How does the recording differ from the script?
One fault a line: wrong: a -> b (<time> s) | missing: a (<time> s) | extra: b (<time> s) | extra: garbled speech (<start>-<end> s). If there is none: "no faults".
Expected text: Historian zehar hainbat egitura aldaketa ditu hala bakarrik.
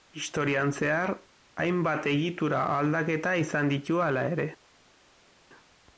extra: izan (3.4 s)
wrong: bakarrik -> ere (4.3 s)